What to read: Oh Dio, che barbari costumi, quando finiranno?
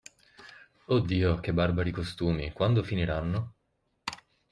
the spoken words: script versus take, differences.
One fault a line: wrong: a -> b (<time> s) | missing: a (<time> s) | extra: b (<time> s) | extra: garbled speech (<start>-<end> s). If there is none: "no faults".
no faults